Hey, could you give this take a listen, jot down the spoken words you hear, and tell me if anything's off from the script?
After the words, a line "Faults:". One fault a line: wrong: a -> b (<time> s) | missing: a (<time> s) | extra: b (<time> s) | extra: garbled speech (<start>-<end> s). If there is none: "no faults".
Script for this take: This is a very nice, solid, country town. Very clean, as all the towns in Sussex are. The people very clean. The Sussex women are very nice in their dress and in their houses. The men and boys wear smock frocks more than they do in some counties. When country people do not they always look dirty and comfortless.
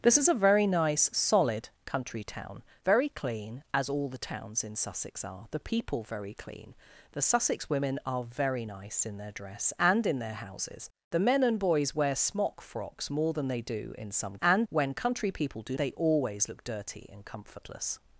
This is a very nice, solid, country town. Very clean, as all the towns in Sussex are. The people very clean. The Sussex women are very nice in their dress and in their houses. The men and boys wear smock frocks more than they do in some and. When country people do they always look dirty and comfortless.
Faults:
wrong: counties -> and (14.4 s)
missing: not (15.8 s)